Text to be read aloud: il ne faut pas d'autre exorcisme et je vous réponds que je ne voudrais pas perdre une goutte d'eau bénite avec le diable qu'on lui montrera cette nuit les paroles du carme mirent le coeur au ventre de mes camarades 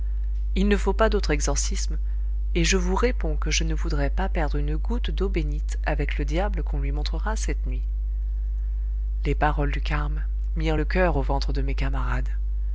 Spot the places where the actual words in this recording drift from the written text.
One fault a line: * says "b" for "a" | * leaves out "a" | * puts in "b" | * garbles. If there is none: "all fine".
all fine